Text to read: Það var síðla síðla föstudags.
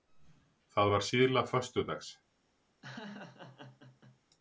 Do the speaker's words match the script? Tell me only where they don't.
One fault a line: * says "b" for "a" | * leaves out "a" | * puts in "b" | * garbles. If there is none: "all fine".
* leaves out "síðla"